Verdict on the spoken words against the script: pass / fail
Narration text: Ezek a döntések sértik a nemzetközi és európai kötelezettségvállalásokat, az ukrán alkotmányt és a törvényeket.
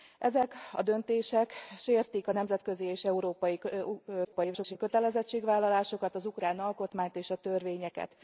fail